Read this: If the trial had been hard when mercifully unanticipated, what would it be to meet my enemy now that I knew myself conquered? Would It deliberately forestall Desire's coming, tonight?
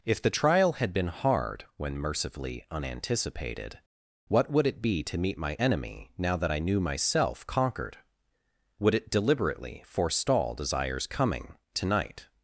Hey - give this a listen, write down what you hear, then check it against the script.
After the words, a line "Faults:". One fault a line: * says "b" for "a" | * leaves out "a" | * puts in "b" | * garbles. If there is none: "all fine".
If the trial had been hard when mercifully unanticipated, what would it be to meet my enemy now that I knew myself conquered? Would It deliberately forestall Desire's coming, tonight?
Faults:
all fine